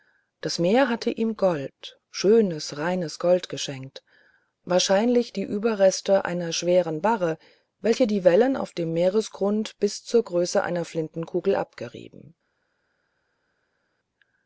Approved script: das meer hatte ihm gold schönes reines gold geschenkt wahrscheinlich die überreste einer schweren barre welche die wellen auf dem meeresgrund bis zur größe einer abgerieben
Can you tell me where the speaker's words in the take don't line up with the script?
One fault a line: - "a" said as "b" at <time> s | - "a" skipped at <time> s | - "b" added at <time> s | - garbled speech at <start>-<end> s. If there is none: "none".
- "flintenkugel" added at 10.8 s